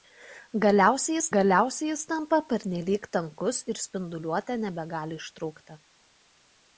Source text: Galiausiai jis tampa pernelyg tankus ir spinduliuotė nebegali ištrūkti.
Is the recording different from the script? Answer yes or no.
yes